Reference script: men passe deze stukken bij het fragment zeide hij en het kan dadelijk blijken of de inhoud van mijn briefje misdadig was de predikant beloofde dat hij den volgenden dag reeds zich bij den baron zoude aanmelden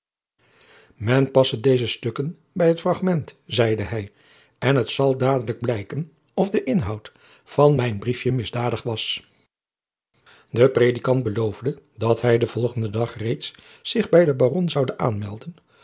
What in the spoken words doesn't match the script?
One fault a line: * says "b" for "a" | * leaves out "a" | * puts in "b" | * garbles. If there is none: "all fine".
* says "zal" for "kan"